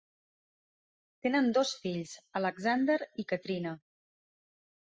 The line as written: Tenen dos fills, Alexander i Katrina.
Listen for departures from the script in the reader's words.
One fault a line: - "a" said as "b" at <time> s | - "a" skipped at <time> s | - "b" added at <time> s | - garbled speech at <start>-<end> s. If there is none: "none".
none